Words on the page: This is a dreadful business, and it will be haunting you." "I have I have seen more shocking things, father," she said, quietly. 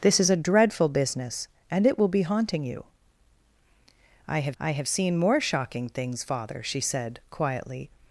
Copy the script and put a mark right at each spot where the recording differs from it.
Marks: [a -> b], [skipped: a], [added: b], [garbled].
This is a dreadful business, and it will be haunting you." "I have I have seen more shocking things, father," she said, quietly.